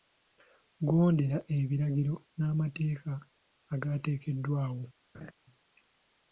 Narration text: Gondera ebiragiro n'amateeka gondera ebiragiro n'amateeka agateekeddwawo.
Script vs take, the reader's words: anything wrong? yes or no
yes